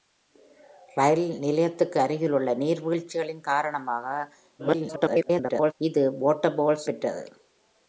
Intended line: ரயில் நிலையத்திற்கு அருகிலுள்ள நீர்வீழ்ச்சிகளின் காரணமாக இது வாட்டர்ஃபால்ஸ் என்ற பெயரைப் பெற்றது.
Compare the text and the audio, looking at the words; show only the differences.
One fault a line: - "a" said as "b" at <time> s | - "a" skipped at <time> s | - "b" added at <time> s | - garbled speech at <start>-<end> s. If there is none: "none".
- garbled speech at 4.6-5.7 s
- "என்ற பெயரைப்" skipped at 6.9 s